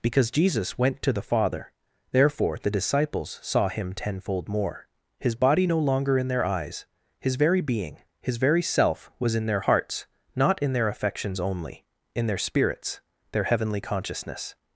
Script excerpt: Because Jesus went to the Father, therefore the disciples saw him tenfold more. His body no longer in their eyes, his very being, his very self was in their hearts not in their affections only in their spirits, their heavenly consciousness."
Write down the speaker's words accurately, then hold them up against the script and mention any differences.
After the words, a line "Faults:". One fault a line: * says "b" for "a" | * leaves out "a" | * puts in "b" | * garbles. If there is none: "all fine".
Because Jesus went to the Father, therefore the disciples saw him tenfold more. His body no longer in their eyes, his very being, his very self was in their hearts not in their affections only in their spirits, their heavenly consciousness."
Faults:
all fine